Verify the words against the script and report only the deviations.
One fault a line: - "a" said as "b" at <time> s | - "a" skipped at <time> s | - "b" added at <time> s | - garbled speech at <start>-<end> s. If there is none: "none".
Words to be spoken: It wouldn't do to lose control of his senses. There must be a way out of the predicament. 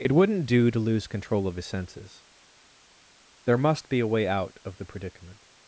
none